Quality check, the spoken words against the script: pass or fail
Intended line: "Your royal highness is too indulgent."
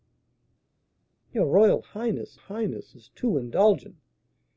fail